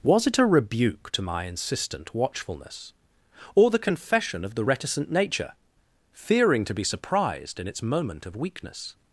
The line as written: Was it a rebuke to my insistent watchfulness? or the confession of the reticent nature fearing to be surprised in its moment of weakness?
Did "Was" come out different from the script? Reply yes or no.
no